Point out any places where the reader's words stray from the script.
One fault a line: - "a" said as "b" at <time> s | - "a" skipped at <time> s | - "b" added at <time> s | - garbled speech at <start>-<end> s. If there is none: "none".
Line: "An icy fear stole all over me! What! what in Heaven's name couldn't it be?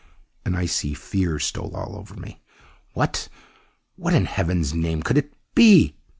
- "couldn't" said as "could" at 5.0 s